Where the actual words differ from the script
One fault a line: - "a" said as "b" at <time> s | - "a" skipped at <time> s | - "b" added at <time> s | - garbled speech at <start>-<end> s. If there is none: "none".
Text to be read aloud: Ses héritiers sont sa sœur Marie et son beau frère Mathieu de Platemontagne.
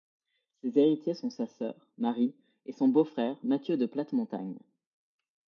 none